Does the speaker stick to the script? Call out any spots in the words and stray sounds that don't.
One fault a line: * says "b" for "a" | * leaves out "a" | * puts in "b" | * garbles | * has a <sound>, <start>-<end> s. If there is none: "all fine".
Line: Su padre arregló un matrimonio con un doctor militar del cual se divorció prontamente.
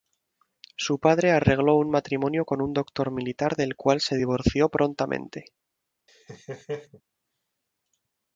* has a laugh, 6.1-7.0 s